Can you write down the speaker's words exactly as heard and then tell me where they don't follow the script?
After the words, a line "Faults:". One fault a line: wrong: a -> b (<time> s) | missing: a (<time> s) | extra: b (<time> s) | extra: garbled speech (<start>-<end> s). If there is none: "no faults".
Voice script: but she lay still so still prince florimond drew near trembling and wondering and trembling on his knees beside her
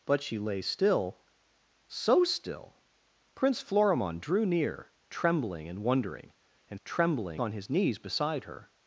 but she lay still so still prince florimond drew near trembling and wondering and trembling on his knees beside her
Faults:
no faults